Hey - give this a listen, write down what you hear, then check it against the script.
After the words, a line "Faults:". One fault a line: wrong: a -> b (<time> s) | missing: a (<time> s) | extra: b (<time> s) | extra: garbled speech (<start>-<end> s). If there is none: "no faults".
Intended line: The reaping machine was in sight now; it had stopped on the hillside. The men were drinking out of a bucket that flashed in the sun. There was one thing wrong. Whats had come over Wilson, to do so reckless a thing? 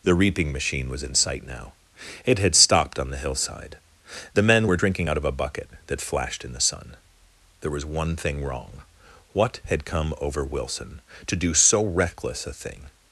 The reaping machine was in sight now; it had stopped on the hillside. The men were drinking out of a bucket that flashed in the sun. There was one thing wrong. What had come over Wilson, to do so reckless a thing?
Faults:
wrong: Whats -> What (9.3 s)